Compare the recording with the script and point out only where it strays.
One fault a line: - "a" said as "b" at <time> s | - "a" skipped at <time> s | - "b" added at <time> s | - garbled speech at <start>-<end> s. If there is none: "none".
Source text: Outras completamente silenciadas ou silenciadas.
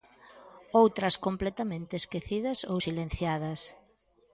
- "silenciadas" said as "esquecidas" at 2.0 s